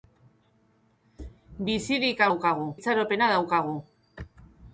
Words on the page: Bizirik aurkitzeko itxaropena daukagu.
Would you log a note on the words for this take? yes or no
yes